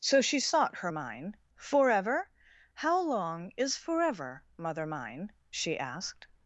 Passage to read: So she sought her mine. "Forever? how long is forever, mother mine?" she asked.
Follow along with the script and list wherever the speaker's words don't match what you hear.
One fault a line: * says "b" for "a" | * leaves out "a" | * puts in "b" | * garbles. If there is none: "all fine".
all fine